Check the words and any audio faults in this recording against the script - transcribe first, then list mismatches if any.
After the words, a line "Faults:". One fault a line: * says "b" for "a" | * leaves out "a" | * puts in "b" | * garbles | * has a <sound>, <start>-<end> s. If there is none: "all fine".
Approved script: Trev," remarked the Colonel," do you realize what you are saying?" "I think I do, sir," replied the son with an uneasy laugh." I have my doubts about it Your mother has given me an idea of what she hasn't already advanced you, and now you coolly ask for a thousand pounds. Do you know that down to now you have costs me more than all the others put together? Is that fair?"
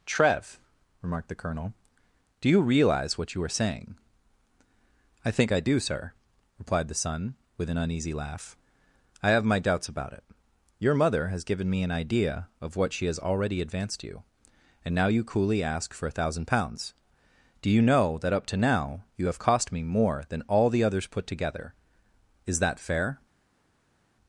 Trev," remarked the Colonel," do you realize what you are saying?" "I think I do, sir," replied the son with an uneasy laugh." I have my doubts about it Your mother has given me an idea of what she has already advanced you, and now you coolly ask for a thousand pounds. Do you know that up to now you have cost me more than all the others put together? Is that fair?"
Faults:
* says "has" for "hasn't"
* says "up" for "down"
* says "cost" for "costs"